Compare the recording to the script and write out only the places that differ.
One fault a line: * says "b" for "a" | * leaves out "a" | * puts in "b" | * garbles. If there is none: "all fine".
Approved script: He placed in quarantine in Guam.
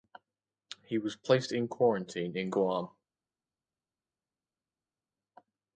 * puts in "was"